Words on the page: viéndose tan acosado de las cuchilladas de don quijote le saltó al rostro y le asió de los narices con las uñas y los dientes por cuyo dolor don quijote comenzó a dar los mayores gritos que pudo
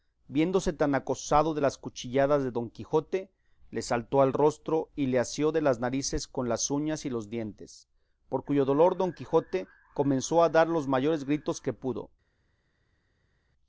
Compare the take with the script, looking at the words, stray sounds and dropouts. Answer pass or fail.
fail